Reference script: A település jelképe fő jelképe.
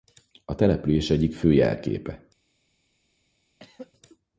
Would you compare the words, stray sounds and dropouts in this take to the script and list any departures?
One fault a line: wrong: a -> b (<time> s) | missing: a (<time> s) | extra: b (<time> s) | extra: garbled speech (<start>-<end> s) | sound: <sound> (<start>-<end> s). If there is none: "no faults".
wrong: jelképe -> egyik (1.1 s)
sound: throat clearing (3.6-3.9 s)